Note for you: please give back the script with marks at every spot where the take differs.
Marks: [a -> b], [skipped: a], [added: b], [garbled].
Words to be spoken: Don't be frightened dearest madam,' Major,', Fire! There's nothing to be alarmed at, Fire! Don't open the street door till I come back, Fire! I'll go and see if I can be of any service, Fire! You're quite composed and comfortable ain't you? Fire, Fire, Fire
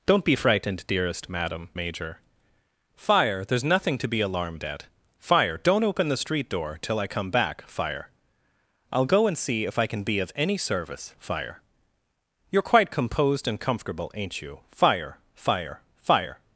Don't be frightened dearest madam,' Major,', Fire! There's nothing to be alarmed at, Fire! Don't open the street door till I come back, Fire! I'll go and see if I can be of any service, Fire! You're quite composed and comfortable ain't you? Fire, Fire, Fire